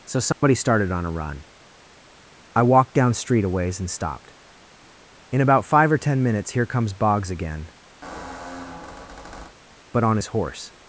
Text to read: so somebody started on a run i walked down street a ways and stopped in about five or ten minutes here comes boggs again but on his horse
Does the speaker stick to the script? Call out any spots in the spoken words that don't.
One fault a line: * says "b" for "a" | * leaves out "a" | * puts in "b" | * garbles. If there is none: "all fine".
all fine